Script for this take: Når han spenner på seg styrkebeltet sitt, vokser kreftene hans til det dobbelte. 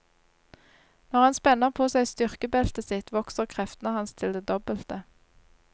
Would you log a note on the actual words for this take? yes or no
no